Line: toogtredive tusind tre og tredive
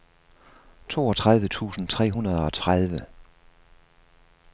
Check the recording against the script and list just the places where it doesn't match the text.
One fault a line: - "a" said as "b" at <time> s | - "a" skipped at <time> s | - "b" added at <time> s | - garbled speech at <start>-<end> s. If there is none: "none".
- "hundrede" added at 2.1 s